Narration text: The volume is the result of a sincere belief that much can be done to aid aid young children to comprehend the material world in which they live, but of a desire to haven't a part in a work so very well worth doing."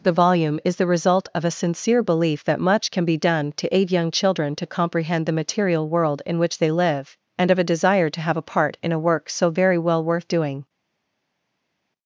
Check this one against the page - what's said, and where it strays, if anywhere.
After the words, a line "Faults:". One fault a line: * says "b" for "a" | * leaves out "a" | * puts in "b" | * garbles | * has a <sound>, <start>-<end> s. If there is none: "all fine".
The volume is the result of a sincere belief that much can be done to aid young children to comprehend the material world in which they live, and of a desire to have a part in a work so very well worth doing."
Faults:
* leaves out "aid"
* says "and" for "but"
* says "have" for "haven't"